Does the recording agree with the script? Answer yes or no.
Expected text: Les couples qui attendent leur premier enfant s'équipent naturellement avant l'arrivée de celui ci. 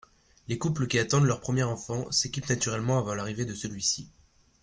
yes